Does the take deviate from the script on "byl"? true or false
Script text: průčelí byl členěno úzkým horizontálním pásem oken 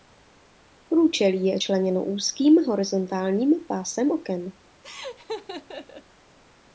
true